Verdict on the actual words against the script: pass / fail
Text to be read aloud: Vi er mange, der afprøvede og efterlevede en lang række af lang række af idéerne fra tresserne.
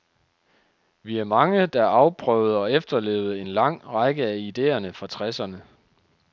fail